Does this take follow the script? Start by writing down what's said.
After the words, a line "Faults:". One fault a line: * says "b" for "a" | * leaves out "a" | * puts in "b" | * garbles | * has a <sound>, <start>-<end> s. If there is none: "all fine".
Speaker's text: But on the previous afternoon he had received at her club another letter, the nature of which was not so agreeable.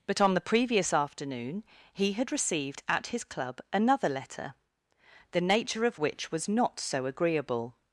But on the previous afternoon he had received at his club another letter, the nature of which was not so agreeable.
Faults:
* says "his" for "her"